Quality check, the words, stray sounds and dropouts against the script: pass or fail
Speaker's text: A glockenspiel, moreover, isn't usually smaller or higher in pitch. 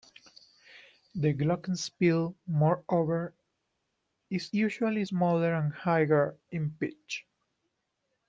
fail